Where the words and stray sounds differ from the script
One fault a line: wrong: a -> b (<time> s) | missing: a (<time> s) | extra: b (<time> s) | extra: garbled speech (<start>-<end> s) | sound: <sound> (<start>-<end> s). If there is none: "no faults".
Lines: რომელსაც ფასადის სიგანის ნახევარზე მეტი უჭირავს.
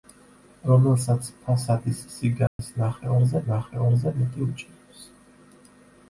sound: dropout (2.5-2.6 s)
extra: ნახევარზე (3.5 s)